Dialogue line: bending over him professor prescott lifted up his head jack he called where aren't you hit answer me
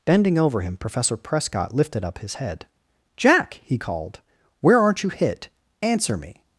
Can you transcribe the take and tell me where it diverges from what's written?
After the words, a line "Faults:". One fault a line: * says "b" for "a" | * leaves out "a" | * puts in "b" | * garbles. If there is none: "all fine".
bending over him professor prescott lifted up his head jack he called where aren't you hit answer me
Faults:
all fine